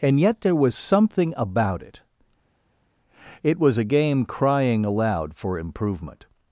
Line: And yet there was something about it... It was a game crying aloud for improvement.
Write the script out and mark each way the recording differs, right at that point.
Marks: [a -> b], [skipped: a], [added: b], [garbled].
And yet there was something about it... It was a game crying aloud for improvement.